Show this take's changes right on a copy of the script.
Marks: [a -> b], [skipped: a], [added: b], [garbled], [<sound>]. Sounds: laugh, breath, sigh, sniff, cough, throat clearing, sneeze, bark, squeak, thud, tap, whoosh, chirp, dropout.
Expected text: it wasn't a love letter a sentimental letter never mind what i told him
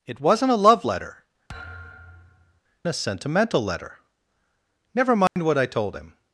it wasn't a love letter [thud] a sentimental letter never mind [dropout] what i told him